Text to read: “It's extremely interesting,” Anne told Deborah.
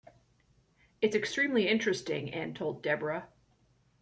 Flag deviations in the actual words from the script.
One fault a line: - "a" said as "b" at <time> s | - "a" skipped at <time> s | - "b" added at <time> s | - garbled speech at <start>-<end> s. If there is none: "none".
none